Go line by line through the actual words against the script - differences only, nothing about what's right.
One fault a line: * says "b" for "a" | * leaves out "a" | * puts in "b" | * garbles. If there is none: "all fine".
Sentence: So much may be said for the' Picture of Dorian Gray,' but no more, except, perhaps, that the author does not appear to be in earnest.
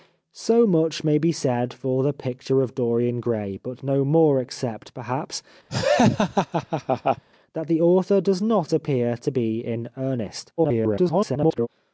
* garbles